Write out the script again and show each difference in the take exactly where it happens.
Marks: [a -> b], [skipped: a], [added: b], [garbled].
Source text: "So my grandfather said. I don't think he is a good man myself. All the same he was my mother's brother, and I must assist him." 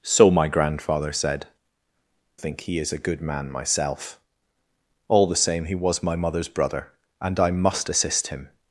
"So my grandfather said. [skipped: I don't] think he is a good man myself. All the same he was my mother's brother, and I must assist him."